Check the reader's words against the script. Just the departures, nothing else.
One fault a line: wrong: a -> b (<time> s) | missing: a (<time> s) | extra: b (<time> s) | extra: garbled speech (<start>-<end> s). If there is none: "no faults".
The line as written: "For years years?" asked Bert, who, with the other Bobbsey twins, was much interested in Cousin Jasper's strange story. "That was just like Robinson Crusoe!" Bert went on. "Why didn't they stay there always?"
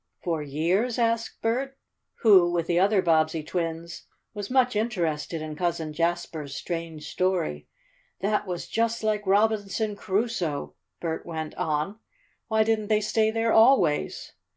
missing: years (1.0 s)